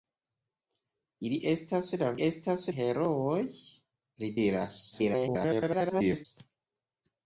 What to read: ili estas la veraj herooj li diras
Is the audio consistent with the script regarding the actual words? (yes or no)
no